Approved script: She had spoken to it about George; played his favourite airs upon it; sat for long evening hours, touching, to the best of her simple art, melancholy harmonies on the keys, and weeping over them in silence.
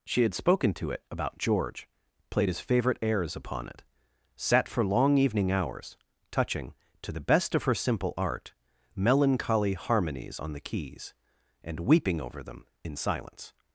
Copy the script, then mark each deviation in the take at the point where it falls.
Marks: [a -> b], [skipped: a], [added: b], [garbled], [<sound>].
She had spoken to it about George; played his favourite airs upon it; sat for long evening hours, touching, to the best of her simple art, melancholy harmonies on the keys, and weeping over them in silence.